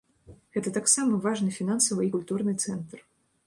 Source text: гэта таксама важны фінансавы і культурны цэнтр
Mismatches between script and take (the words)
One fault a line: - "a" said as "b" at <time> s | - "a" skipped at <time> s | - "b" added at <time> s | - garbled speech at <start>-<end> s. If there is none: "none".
none